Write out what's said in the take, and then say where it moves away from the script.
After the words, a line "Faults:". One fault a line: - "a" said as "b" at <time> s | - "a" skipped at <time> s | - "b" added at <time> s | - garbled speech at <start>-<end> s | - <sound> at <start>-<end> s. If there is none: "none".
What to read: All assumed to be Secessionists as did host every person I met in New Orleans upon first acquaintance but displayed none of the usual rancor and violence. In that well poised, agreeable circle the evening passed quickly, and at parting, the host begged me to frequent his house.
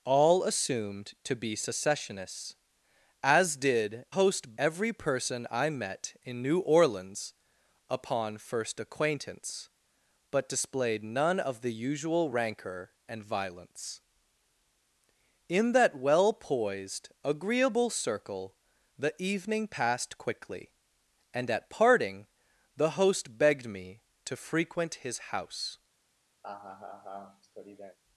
All assumed to be Secessionists as did host every person I met in New Orleans upon first acquaintance but displayed none of the usual rancor and violence. In that well poised, agreeable circle the evening passed quickly, and at parting, the host begged me to frequent his house.
Faults:
- laugh at 26.4-28.0 s